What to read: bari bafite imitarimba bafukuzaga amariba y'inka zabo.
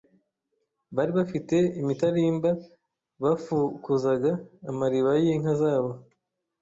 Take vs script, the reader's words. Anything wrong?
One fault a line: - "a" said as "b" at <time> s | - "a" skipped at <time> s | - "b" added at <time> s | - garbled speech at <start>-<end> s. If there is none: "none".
none